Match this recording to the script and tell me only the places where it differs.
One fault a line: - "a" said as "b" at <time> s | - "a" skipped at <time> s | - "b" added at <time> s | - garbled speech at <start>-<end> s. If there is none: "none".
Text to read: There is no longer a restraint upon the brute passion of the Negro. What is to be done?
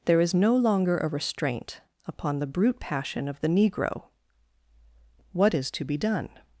none